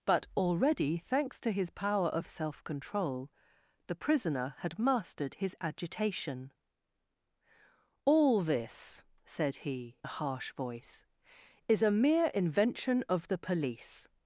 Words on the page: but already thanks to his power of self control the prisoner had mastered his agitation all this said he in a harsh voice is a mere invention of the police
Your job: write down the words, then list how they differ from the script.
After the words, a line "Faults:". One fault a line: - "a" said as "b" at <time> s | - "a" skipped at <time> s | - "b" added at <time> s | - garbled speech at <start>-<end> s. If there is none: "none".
but already thanks to his power of self control the prisoner had mastered his agitation all this said he a harsh voice is a mere invention of the police
Faults:
- "in" skipped at 10.0 s